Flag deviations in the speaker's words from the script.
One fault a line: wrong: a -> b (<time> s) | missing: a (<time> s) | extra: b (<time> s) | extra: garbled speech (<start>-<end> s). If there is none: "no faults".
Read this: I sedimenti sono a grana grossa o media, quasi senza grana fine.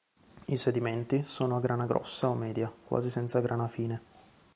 no faults